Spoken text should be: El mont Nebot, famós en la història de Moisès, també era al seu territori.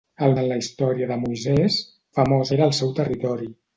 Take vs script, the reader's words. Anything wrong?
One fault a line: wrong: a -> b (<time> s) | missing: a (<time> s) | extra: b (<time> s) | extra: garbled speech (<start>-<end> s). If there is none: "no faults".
missing: mont Nebot famós (0.3 s)
wrong: també -> famós (2.2 s)